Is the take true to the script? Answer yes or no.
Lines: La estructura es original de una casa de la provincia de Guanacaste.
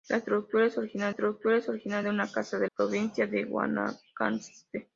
no